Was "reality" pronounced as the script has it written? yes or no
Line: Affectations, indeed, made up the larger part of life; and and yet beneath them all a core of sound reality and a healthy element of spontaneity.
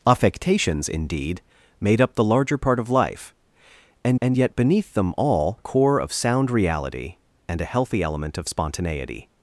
yes